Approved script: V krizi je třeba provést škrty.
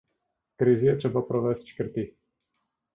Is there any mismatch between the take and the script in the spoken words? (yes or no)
no